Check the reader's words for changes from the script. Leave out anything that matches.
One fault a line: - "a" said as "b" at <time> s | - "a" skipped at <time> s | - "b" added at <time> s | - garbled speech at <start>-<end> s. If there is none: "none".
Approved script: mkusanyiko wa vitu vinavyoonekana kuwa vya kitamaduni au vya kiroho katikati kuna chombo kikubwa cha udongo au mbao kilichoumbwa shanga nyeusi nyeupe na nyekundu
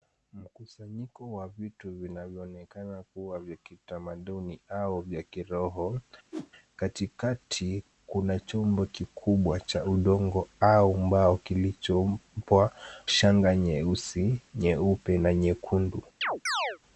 none